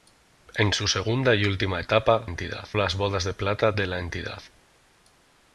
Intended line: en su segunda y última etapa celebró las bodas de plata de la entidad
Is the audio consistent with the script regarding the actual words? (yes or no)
no